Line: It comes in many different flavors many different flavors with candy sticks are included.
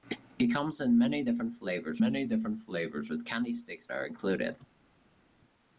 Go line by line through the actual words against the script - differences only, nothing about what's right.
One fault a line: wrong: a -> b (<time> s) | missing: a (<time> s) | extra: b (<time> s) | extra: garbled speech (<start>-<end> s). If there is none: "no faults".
no faults